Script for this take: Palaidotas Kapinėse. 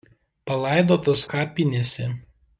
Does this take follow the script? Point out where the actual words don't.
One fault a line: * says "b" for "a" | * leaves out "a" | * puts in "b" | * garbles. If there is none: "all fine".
all fine